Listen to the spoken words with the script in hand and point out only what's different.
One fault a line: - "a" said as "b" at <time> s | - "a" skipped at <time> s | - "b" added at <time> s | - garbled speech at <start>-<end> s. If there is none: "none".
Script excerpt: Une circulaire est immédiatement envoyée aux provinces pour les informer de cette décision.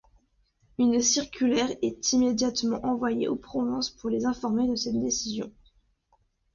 none